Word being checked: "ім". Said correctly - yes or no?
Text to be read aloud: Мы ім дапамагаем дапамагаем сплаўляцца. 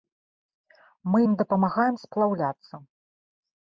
yes